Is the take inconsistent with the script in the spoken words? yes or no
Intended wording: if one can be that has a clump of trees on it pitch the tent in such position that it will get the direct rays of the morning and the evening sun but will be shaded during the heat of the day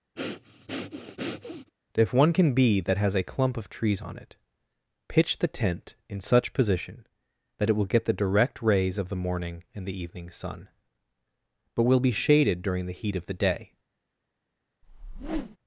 no